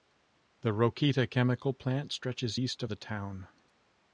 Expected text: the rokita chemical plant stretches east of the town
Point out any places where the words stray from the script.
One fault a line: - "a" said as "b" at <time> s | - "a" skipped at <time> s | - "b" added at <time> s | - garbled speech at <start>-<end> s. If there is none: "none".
- "of" skipped at 2.8 s